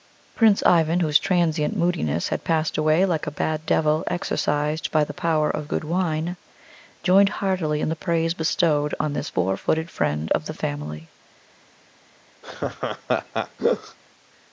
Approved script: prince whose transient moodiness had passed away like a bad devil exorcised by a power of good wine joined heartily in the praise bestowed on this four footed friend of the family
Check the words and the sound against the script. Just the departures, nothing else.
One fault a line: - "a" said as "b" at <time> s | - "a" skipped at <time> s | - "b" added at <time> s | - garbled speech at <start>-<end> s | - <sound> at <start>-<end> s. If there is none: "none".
- "ivan" added at 0.7 s
- "a" said as "the" at 5.0 s
- laugh at 12.4-14.0 s